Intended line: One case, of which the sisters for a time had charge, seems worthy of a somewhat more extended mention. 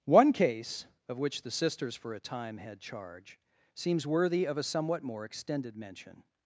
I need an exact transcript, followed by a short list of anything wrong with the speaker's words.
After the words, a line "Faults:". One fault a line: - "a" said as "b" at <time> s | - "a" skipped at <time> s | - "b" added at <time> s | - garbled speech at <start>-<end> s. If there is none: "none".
One case, of which the sisters for a time had charge, seems worthy of a somewhat more extended mention.
Faults:
none